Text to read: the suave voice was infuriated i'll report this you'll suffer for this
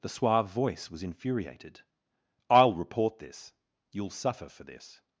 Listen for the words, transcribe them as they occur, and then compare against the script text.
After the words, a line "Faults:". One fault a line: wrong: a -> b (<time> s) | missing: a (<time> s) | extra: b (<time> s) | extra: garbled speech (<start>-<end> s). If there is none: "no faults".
the suave voice was infuriated i'll report this you'll suffer for this
Faults:
no faults